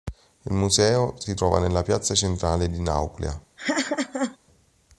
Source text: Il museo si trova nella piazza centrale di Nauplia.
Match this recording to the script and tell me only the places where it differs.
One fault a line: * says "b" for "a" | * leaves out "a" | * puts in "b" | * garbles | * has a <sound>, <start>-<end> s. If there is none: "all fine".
* has a laugh, 3.6-4.4 s